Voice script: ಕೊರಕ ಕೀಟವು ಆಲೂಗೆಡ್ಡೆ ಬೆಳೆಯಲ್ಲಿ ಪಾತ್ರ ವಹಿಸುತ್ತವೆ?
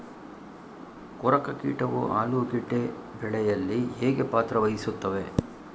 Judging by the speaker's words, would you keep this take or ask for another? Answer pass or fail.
fail